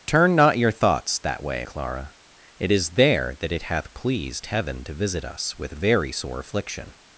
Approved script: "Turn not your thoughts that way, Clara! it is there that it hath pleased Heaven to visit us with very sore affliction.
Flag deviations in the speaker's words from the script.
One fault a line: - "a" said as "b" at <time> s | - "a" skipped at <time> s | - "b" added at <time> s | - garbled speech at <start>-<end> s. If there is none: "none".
none